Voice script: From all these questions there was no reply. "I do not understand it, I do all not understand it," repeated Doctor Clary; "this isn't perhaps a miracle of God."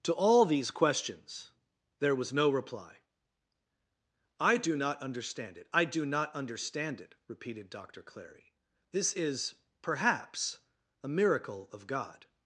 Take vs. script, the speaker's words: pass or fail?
fail